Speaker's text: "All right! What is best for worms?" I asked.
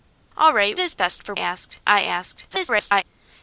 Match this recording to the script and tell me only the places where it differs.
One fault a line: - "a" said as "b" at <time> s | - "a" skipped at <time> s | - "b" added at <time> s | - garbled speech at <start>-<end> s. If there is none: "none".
- "What" skipped at 0.8 s
- "worms" said as "asked" at 1.4 s
- garbled speech at 2.5-3.0 s